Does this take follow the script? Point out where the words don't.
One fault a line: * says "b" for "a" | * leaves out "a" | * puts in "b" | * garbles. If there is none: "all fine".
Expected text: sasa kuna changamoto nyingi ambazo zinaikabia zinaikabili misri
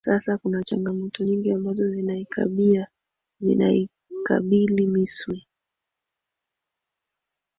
all fine